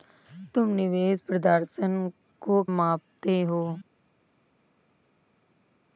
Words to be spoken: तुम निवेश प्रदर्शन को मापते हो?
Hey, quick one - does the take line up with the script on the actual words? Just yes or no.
yes